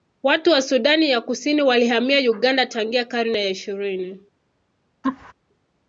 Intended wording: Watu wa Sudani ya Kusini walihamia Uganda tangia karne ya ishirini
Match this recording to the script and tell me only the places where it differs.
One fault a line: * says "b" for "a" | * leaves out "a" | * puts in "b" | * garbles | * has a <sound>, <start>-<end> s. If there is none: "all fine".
* has a laugh, 5.0-5.3 s